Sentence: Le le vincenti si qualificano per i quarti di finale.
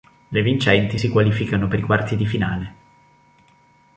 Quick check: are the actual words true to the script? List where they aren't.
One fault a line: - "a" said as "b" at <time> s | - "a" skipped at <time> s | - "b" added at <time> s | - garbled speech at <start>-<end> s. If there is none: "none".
- "le" skipped at 0.4 s